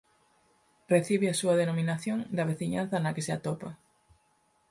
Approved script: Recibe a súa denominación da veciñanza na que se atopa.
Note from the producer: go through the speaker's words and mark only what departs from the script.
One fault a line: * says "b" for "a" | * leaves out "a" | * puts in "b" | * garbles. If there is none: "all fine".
all fine